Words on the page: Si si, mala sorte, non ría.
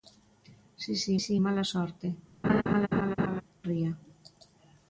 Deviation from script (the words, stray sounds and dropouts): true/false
true